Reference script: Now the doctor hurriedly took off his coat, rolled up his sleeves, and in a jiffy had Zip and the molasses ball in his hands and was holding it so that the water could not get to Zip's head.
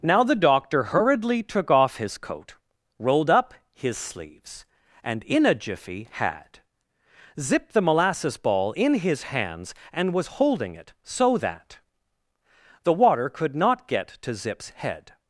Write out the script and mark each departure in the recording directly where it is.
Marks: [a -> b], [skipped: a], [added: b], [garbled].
Now the doctor hurriedly took off his coat, rolled up his sleeves, and in a jiffy had Zip [skipped: and] the molasses ball in his hands and was holding it so that the water could not get to Zip's head.